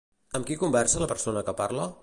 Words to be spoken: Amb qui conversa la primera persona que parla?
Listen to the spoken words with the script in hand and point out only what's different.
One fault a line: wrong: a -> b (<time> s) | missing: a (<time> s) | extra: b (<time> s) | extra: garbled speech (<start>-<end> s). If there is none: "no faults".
missing: primera (1.1 s)